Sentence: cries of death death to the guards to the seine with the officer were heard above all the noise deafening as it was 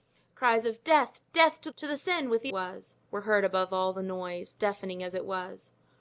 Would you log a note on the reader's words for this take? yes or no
yes